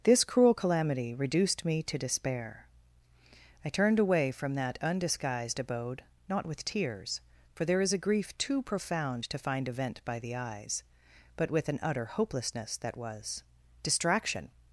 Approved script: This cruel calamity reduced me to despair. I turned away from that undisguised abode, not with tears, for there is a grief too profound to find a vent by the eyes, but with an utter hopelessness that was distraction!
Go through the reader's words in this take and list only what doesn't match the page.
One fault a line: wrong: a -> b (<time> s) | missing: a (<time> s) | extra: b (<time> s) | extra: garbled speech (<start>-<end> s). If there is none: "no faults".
no faults